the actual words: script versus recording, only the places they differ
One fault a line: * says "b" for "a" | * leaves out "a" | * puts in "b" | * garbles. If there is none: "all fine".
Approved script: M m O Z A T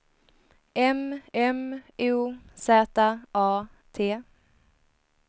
all fine